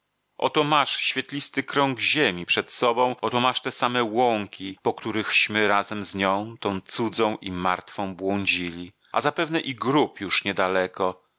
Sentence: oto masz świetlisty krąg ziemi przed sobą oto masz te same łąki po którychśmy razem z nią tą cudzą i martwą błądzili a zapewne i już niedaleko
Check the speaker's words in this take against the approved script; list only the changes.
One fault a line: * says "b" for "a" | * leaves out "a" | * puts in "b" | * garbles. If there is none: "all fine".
* puts in "grób"